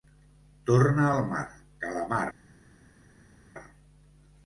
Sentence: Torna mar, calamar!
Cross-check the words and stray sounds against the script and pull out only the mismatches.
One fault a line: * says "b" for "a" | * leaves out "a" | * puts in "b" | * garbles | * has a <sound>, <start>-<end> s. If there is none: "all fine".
* puts in "al"